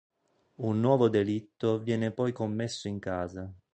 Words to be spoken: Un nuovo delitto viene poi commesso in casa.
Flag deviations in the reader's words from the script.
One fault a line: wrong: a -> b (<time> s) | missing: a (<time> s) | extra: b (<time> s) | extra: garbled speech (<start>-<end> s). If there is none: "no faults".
no faults